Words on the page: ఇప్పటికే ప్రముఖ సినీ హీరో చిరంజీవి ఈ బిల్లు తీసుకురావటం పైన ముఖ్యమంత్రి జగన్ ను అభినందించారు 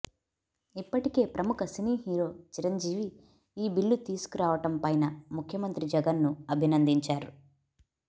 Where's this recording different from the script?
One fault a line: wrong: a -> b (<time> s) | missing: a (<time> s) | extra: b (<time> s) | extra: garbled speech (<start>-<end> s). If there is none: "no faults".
no faults